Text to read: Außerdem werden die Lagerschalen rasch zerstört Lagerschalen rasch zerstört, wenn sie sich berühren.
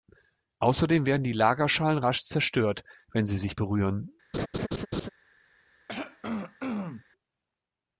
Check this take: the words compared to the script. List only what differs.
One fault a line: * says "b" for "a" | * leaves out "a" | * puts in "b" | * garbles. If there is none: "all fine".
* leaves out "Lagerschalen rasch zerstört"